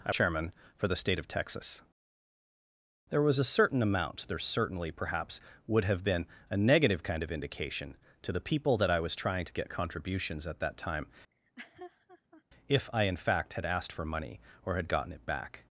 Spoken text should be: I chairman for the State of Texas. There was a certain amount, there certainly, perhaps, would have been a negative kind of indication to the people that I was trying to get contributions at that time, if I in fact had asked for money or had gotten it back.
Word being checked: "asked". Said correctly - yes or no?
yes